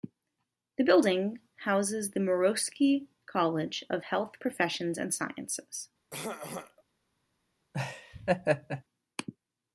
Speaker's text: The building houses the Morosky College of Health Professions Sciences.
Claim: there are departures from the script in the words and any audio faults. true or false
true